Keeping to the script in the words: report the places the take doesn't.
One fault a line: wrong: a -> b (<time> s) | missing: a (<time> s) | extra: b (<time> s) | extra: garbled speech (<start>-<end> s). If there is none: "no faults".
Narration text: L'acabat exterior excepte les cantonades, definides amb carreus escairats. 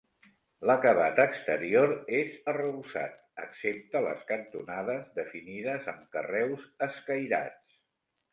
extra: és arrebossat (2.2 s)